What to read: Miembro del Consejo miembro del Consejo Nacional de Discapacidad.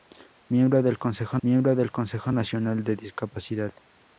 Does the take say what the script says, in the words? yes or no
yes